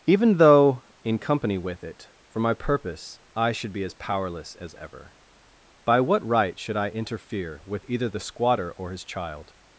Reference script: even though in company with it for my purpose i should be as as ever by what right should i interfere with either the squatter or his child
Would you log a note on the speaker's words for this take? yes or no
yes